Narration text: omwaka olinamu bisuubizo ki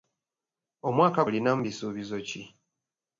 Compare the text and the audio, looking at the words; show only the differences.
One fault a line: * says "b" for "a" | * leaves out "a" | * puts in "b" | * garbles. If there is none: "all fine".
all fine